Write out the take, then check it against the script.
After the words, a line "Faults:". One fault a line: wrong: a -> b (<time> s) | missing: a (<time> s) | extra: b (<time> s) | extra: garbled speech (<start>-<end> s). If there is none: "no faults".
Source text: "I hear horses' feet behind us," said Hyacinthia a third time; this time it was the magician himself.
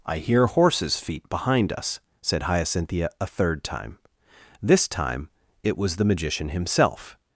"I hear horses' feet behind us," said Hyacinthia a third time; this time it was the magician himself.
Faults:
no faults